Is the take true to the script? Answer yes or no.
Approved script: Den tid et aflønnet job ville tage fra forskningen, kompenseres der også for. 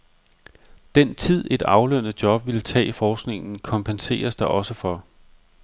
no